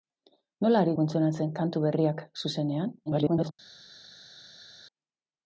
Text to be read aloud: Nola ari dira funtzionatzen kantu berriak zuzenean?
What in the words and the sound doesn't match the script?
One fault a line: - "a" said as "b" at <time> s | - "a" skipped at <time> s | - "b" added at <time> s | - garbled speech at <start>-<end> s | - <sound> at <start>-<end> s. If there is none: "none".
- "dira" skipped at 0.9 s
- garbled speech at 3.1-3.5 s